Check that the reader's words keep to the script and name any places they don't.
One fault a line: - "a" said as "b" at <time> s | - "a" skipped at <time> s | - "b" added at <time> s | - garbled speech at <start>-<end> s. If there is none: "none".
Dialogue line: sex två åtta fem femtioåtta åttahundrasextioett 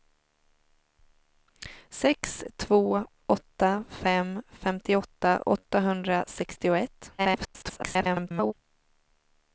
- garbled speech at 7.2-8.5 s